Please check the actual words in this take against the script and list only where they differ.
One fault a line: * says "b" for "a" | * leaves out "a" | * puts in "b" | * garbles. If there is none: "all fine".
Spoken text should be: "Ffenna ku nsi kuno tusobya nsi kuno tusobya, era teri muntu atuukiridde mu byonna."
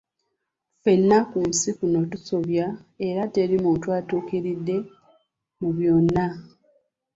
* leaves out "nsi kuno tusobya"